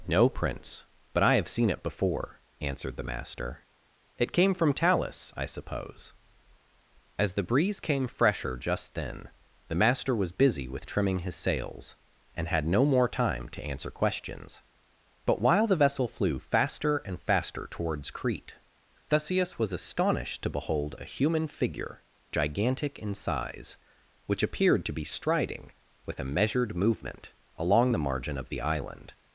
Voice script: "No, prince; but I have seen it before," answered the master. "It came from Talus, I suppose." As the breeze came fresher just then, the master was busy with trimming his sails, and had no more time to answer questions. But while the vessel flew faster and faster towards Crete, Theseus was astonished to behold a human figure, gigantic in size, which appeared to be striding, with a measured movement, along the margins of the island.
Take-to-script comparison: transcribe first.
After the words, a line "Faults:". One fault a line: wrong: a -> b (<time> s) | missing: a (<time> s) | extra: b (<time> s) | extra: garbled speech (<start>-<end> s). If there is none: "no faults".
"No, prince; but I have seen it before," answered the master. "It came from Talus, I suppose." As the breeze came fresher just then, the master was busy with trimming his sails, and had no more time to answer questions. But while the vessel flew faster and faster towards Crete, Theseus was astonished to behold a human figure, gigantic in size, which appeared to be striding, with a measured movement, along the margin of the island.
Faults:
wrong: margins -> margin (28.0 s)